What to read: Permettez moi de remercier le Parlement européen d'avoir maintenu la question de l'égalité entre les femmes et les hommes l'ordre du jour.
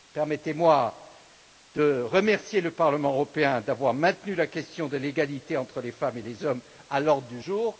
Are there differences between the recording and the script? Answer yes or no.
yes